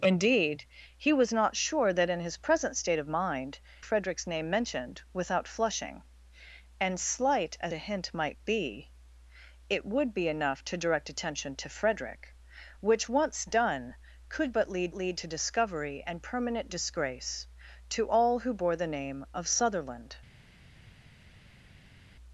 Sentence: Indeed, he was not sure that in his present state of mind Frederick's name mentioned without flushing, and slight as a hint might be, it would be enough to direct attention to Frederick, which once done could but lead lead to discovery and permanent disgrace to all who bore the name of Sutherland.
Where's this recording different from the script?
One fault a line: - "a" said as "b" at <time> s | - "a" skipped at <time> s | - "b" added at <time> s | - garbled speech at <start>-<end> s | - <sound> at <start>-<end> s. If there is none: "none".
none